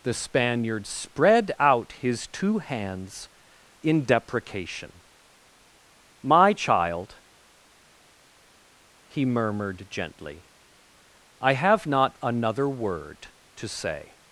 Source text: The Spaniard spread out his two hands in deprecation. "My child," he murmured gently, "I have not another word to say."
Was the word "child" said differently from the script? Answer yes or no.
no